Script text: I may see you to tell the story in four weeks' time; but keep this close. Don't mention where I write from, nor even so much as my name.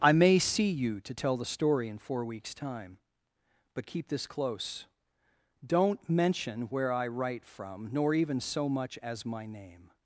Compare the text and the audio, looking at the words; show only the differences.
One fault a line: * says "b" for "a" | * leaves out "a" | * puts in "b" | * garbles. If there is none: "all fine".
all fine